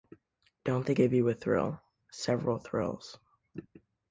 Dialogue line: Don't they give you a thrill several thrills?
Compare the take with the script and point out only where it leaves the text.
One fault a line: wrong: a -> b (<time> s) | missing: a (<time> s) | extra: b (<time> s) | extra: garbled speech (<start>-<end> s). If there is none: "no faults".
no faults